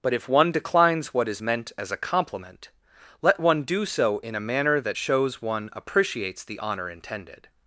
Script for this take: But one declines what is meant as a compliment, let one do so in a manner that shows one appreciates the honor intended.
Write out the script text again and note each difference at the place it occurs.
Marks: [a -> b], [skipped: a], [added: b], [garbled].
But [added: if] one declines what is meant as a compliment, let one do so in a manner that shows one appreciates the honor intended.